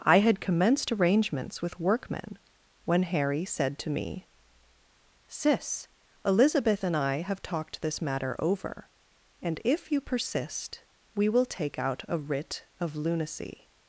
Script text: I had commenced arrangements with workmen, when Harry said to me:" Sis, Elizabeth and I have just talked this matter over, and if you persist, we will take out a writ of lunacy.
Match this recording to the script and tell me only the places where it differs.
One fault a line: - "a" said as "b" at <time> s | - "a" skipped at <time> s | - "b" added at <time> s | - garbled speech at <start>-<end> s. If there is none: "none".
- "just" skipped at 7.4 s